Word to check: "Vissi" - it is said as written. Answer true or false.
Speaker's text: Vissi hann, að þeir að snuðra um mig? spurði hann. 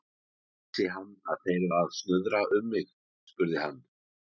true